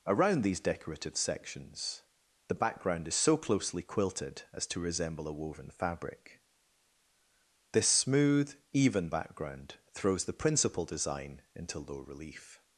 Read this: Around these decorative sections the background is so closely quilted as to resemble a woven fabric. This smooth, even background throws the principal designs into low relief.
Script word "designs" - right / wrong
wrong